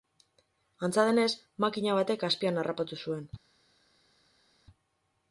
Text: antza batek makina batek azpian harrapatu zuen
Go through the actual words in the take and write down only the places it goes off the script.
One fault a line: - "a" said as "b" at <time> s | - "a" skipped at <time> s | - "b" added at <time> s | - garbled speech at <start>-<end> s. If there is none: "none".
- "batek" said as "denez" at 1.1 s